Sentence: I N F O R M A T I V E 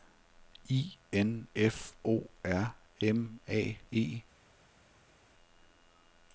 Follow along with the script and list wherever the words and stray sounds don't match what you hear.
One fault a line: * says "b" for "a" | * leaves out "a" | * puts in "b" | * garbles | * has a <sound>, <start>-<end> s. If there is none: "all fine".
* leaves out "T I V"